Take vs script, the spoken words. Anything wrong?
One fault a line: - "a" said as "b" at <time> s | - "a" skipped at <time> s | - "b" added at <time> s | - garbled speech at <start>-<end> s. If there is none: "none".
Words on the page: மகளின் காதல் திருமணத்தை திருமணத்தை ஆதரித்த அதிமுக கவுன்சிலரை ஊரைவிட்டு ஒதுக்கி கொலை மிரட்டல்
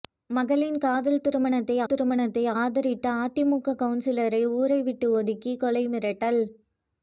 none